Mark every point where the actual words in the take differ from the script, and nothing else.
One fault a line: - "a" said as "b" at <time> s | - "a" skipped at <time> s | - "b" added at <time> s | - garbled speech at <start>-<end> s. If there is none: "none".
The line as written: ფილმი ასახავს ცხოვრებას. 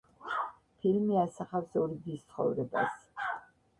- "ორი დის" added at 1.8 s